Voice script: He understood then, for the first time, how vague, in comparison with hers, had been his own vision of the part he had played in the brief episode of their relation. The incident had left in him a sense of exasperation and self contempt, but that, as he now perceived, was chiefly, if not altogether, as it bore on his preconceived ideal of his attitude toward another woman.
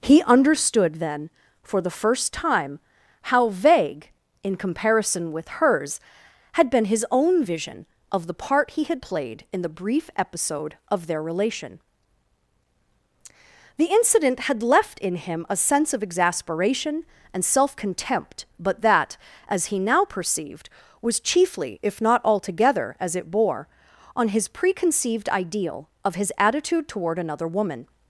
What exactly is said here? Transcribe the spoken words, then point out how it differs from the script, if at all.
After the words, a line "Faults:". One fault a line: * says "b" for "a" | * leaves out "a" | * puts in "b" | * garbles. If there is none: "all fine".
He understood then, for the first time, how vague, in comparison with hers, had been his own vision of the part he had played in the brief episode of their relation. The incident had left in him a sense of exasperation and self contempt, but that, as he now perceived, was chiefly, if not altogether, as it bore on his preconceived ideal of his attitude toward another woman.
Faults:
all fine